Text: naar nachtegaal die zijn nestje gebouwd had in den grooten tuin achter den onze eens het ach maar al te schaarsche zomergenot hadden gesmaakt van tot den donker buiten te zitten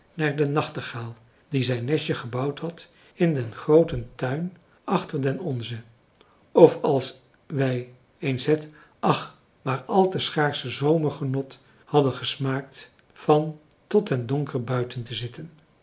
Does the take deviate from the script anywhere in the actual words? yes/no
yes